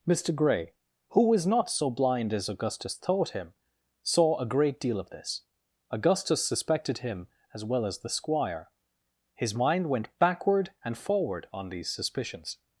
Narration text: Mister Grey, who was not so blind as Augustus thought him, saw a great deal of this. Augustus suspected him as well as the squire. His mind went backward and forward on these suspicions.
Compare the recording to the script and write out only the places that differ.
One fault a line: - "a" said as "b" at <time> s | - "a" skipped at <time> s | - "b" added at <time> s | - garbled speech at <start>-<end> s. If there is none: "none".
none